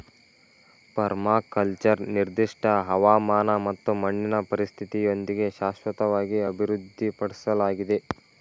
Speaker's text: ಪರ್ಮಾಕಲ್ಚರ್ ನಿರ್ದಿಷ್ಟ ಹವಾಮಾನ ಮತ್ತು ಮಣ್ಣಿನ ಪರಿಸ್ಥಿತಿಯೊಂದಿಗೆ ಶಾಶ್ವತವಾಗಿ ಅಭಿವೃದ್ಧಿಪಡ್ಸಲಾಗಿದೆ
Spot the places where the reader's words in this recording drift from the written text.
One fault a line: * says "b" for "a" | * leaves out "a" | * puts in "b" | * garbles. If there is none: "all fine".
all fine